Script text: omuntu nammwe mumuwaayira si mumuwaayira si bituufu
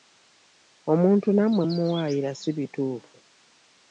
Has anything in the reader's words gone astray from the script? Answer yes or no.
yes